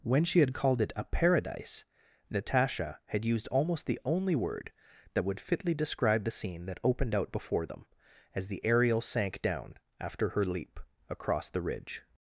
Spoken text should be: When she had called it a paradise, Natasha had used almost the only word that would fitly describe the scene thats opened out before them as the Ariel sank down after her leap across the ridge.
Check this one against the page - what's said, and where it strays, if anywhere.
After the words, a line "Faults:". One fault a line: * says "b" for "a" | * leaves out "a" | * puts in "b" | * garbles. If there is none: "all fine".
When she had called it a paradise, Natasha had used almost the only word that would fitly describe the scene that opened out before them as the Ariel sank down after her leap across the ridge.
Faults:
* says "that" for "thats"